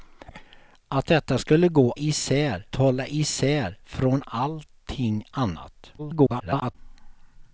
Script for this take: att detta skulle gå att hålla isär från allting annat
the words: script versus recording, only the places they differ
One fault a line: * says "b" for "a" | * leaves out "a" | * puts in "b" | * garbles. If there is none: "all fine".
* says "isär" for "att"
* garbles